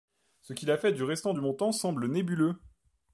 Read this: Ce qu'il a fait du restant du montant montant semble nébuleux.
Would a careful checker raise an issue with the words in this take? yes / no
yes